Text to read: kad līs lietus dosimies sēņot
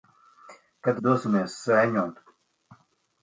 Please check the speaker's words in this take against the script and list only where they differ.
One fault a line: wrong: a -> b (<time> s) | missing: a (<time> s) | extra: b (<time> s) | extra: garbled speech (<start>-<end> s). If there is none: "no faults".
missing: līs lietus (1.0 s)